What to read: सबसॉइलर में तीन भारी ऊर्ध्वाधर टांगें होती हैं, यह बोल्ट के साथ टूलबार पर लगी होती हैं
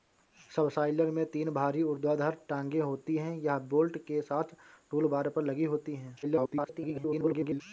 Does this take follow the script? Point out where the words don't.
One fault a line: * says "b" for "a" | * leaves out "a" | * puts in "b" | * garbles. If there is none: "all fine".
* garbles